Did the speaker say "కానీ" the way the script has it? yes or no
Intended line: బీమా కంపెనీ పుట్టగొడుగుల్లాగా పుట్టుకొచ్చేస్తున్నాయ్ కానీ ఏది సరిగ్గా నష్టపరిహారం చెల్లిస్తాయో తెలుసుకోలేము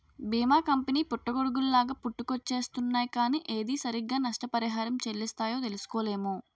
yes